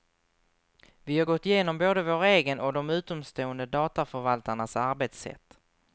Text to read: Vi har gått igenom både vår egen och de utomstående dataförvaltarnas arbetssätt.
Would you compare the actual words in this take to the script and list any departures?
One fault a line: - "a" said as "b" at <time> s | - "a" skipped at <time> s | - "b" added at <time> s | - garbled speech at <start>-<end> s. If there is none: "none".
none